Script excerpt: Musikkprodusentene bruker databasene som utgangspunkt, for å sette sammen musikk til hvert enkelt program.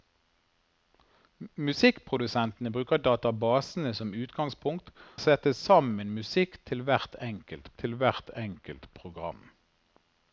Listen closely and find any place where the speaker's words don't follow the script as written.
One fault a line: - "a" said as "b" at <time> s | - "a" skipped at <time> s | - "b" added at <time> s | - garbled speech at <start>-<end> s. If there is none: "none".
- "for" skipped at 4.9 s
- "til hvert enkelt" added at 7.8 s